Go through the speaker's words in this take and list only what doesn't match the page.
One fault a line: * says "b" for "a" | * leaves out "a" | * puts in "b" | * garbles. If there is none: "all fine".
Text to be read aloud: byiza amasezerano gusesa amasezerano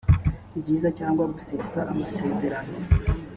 * says "cyangwa" for "amasezerano"